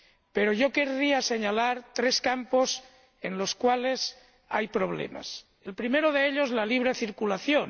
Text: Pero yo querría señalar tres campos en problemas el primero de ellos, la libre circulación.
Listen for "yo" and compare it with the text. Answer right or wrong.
right